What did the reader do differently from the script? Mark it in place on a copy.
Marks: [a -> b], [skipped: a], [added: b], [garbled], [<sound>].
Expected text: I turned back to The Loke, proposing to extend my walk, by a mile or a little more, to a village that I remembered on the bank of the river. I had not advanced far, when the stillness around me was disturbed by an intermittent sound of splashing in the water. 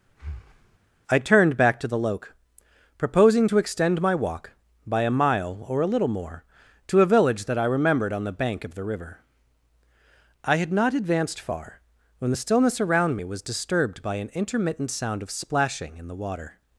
[breath] I turned back to The Loke, proposing to extend my walk, by a mile or a little more, to a village that I remembered on the bank of the river. I had not advanced far, when the stillness around me was disturbed by an intermittent sound of splashing in the water.